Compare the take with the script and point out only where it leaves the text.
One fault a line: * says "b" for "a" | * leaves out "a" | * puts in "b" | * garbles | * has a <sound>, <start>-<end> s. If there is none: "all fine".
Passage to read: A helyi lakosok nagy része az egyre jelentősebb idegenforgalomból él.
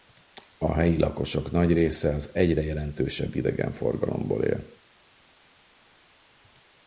all fine